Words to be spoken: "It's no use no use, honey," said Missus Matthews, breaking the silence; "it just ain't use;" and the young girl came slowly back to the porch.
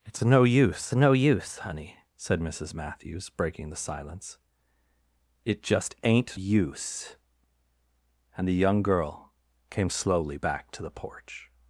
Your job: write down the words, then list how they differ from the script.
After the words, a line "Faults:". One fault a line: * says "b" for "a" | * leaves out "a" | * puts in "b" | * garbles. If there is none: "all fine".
"It's no use no use, honey," said Missus Matthews, breaking the silence; "it just ain't use;" and the young girl came slowly back to the porch.
Faults:
all fine